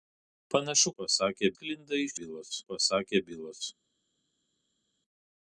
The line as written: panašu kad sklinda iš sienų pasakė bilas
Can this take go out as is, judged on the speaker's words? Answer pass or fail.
fail